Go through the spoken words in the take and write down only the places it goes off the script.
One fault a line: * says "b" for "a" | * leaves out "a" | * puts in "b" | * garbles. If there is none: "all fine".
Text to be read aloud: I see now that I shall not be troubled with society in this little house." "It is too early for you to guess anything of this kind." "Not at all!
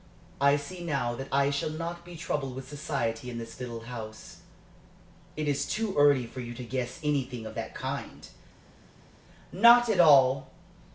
* says "that" for "this"